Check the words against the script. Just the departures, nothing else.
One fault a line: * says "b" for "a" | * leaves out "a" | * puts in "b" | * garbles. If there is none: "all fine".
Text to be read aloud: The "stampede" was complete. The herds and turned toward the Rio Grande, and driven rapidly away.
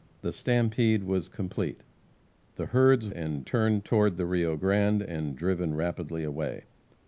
all fine